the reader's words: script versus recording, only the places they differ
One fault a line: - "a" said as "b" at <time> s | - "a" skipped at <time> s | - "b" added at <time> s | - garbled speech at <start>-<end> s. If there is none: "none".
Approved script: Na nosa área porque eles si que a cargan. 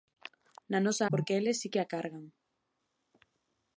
- "área" skipped at 1.1 s